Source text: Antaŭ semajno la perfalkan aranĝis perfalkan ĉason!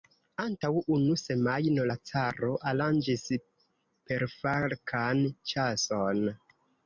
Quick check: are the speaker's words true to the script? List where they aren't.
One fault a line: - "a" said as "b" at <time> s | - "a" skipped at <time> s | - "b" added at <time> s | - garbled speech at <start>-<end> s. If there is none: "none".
- "unu" added at 0.9 s
- "perfalkan" said as "caro" at 2.1 s